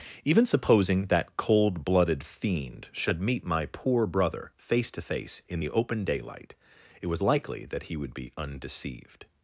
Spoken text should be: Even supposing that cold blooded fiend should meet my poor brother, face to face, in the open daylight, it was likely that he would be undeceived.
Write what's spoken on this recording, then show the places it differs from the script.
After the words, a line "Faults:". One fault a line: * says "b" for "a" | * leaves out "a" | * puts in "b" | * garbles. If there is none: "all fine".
Even supposing that cold blooded fiend should meet my poor brother, face to face, in the open daylight, it was likely that he would be undeceived.
Faults:
all fine